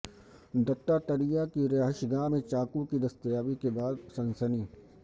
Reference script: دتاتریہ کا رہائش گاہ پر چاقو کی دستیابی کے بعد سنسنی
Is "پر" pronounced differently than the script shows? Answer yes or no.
yes